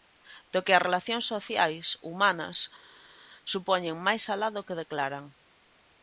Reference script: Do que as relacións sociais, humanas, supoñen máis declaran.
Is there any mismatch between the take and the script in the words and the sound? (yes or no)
yes